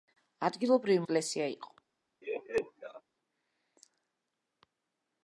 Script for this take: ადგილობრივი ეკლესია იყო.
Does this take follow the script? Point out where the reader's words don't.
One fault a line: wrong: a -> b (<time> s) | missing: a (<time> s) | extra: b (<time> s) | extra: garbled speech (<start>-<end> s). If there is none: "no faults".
no faults